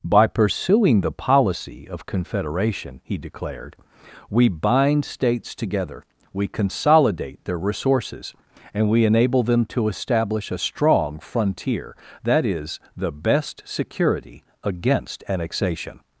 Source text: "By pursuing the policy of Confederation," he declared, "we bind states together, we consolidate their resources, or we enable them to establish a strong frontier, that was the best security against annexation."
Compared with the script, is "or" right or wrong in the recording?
wrong